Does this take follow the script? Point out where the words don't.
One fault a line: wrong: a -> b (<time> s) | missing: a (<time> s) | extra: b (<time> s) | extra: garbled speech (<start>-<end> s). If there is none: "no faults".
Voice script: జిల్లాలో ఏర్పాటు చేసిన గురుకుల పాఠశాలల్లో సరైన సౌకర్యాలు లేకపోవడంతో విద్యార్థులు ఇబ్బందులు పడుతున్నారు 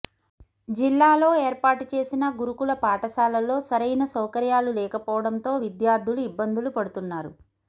no faults